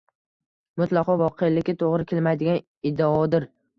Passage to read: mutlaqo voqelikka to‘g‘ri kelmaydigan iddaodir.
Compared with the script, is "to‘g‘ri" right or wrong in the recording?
right